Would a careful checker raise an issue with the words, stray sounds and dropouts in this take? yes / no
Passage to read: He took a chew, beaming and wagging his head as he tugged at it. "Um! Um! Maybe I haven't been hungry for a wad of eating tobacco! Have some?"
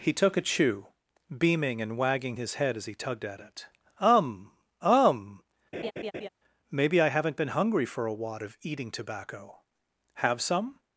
yes